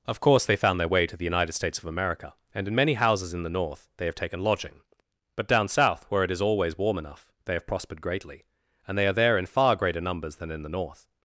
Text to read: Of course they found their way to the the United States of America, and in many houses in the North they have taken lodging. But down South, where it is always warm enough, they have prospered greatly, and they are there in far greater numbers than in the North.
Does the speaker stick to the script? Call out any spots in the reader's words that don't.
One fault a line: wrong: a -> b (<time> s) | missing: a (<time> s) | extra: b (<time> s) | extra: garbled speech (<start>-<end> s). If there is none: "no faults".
missing: the (1.3 s)